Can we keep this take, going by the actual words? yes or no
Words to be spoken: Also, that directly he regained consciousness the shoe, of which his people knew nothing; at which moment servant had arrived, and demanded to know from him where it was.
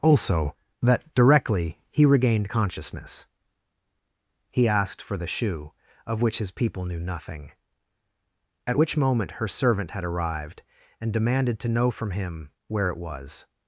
no